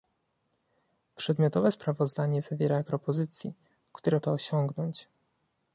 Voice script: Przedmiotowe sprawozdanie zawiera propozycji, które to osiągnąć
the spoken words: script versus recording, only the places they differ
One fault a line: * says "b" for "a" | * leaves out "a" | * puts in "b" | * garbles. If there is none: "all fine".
all fine